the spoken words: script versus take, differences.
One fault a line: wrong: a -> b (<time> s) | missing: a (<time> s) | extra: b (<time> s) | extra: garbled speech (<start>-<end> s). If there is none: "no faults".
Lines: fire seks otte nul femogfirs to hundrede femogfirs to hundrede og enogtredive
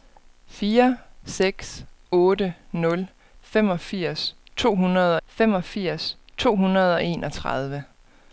no faults